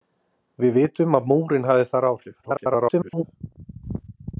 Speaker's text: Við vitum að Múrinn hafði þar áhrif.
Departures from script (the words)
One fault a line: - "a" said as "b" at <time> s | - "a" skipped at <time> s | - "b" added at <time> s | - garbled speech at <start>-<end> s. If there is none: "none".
- garbled speech at 2.4-3.2 s